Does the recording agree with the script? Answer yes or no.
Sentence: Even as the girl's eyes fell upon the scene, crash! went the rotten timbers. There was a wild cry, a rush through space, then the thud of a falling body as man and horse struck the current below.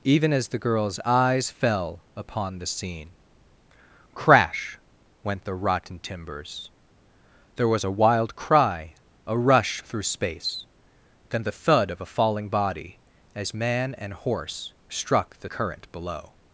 yes